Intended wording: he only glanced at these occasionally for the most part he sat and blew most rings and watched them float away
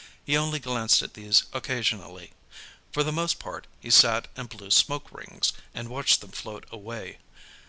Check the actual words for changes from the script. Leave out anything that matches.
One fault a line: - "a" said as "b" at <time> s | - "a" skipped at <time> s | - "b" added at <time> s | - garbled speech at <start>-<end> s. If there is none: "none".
- "most" said as "smoke" at 4.7 s